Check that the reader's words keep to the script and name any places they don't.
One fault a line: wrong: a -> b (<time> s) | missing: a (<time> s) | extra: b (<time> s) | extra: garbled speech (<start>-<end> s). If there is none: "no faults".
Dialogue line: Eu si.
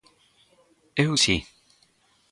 no faults